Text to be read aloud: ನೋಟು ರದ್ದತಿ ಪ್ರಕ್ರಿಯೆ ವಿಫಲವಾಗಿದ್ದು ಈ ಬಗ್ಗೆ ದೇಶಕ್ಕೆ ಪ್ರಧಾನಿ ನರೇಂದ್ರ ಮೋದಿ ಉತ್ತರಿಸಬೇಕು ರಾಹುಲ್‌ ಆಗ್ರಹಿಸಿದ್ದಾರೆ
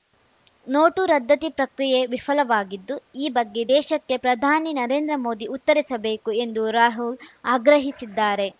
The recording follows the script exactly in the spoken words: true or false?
false